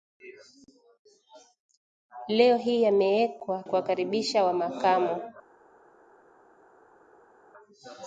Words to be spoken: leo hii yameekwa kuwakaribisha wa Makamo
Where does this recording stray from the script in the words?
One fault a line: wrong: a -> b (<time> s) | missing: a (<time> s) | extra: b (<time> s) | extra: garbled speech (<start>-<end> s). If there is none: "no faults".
no faults